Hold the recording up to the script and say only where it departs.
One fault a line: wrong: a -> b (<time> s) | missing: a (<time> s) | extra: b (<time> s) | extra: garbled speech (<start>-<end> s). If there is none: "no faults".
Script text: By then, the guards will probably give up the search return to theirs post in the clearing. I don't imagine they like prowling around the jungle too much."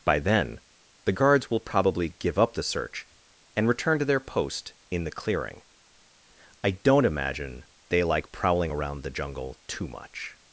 extra: and (3.5 s)
wrong: theirs -> their (4.0 s)